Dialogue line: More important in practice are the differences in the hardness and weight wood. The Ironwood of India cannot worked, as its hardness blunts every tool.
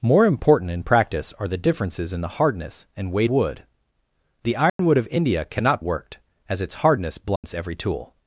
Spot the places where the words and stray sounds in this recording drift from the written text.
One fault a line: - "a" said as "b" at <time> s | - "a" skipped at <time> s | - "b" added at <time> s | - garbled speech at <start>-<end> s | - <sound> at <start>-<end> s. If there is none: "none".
- dropout at 4.7-4.8 s
- dropout at 7.4-7.4 s